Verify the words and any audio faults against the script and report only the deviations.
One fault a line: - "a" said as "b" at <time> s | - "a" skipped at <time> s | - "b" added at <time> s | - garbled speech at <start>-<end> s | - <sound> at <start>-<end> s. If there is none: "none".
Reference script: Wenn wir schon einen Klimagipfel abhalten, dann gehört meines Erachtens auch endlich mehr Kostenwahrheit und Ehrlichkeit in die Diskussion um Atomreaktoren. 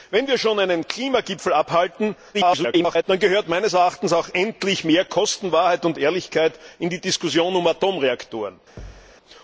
- garbled speech at 2.3-3.0 s
- thud at 8.8-9.1 s